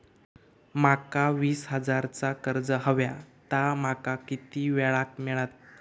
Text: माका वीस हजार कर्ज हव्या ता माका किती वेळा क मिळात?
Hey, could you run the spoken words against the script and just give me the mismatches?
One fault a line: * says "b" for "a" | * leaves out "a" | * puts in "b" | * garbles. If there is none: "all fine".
* puts in "चा"